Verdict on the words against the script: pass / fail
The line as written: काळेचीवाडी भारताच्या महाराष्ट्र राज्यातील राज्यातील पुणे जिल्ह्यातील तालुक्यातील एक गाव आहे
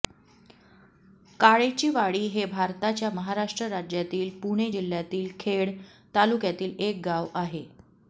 fail